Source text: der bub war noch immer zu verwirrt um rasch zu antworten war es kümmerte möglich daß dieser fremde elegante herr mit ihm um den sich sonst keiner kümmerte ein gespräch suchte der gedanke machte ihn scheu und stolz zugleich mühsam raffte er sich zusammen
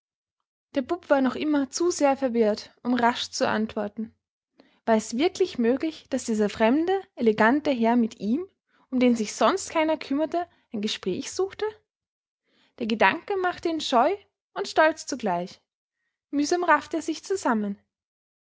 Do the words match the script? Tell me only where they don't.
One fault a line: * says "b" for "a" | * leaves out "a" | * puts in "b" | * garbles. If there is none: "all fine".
* puts in "sehr"
* says "wirklich" for "kümmerte"